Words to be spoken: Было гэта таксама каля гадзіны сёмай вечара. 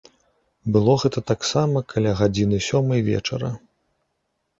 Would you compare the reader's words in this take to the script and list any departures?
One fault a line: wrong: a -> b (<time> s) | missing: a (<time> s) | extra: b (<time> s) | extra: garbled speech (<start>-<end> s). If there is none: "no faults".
no faults